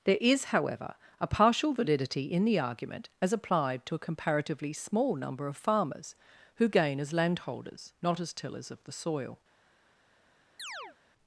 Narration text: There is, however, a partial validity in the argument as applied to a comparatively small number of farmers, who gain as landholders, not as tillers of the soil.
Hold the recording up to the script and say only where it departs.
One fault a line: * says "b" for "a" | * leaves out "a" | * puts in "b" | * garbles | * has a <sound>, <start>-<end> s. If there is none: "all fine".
* has a chirp, 10.6-11.0 s